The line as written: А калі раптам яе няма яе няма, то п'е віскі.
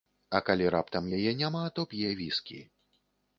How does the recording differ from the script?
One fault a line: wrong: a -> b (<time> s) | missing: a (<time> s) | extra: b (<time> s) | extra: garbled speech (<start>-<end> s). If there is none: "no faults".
missing: яе няма (1.6 s)